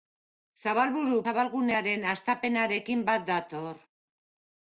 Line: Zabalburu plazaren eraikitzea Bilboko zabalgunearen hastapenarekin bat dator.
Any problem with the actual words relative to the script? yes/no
yes